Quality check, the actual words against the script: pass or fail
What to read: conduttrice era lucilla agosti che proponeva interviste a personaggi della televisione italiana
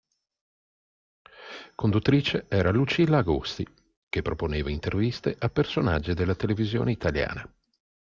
pass